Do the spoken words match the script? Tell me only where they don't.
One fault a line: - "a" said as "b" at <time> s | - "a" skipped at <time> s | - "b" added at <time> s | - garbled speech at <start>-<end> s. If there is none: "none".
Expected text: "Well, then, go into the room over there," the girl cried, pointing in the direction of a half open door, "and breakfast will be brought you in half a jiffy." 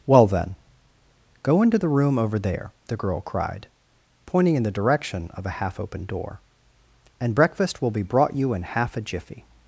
none